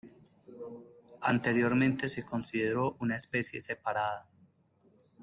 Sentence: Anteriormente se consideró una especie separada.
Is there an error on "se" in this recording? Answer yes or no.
no